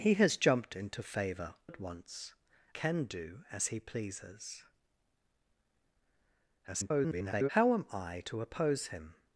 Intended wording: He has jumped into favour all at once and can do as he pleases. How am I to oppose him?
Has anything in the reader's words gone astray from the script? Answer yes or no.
yes